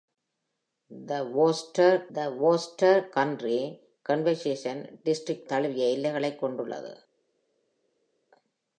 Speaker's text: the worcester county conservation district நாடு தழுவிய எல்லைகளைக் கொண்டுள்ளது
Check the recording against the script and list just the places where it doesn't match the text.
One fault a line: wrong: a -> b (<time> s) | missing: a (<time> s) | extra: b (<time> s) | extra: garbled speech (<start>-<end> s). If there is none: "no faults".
extra: the worcester (2.1 s)
missing: நாடு (5.5 s)